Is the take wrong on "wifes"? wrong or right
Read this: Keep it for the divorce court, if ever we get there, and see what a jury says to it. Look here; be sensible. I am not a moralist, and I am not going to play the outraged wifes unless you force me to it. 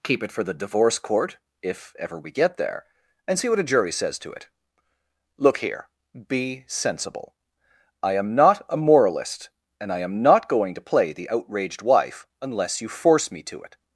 wrong